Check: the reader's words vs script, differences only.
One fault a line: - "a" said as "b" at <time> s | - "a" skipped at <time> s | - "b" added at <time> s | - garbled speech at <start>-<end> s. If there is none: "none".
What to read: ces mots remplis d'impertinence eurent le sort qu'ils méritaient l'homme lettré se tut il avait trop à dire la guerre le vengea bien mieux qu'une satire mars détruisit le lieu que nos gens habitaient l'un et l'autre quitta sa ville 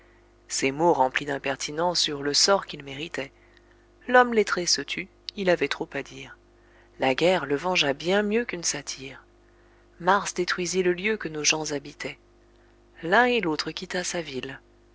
none